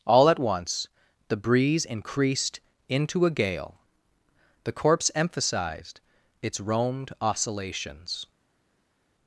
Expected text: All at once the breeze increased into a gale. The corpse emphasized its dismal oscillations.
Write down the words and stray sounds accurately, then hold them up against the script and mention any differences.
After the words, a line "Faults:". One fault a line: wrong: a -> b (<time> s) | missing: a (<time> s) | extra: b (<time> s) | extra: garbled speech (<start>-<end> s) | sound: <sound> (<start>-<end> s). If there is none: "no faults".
All at once the breeze increased into a gale. The corpse emphasized its roamed oscillations.
Faults:
wrong: dismal -> roamed (6.6 s)